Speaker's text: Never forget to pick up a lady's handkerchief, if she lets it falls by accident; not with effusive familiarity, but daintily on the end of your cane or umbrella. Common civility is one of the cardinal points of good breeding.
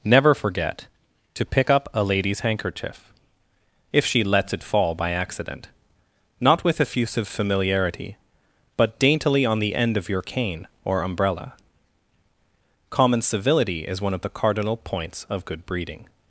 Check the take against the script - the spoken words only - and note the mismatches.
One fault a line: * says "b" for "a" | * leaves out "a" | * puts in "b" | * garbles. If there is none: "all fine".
* says "fall" for "falls"